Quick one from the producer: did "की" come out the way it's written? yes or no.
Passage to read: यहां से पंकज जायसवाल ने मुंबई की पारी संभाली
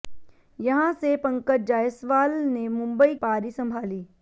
no